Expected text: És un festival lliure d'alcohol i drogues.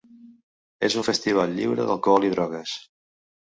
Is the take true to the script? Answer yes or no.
yes